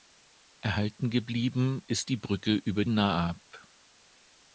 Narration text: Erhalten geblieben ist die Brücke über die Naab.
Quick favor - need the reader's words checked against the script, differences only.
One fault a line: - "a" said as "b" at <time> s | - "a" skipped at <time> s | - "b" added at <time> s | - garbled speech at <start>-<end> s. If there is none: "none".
- "die" skipped at 2.8 s